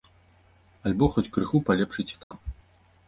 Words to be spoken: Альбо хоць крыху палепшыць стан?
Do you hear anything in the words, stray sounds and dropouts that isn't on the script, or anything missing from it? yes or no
yes